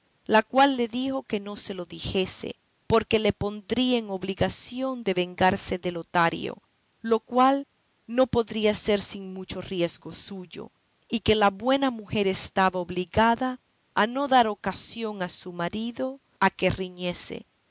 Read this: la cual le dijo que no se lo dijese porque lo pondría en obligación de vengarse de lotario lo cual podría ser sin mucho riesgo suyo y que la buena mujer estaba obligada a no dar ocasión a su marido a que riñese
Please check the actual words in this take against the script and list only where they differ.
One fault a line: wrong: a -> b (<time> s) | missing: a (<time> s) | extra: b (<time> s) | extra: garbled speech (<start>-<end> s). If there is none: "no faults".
wrong: lo -> le (3.2 s)
extra: no (8.1 s)